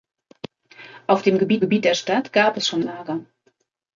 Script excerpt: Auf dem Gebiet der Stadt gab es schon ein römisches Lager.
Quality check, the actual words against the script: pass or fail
fail